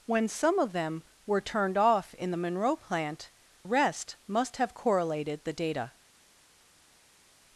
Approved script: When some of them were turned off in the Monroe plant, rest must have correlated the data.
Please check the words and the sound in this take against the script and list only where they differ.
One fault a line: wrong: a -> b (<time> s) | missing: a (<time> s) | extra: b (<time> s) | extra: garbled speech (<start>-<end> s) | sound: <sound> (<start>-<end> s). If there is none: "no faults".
no faults